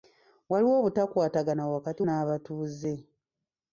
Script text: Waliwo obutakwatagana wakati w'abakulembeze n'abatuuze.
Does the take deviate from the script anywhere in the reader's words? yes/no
yes